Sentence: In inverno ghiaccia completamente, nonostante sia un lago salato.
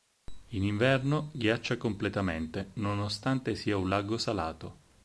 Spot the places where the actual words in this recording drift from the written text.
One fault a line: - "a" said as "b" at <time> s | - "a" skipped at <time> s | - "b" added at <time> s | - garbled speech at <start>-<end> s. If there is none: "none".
none